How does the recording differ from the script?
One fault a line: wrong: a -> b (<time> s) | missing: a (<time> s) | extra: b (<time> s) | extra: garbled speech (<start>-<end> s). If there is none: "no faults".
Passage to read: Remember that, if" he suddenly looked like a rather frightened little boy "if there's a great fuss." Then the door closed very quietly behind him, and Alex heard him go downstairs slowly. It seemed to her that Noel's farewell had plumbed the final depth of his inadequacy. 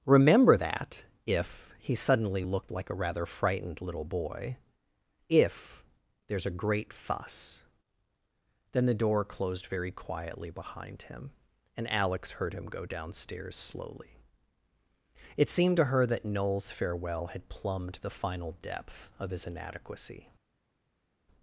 no faults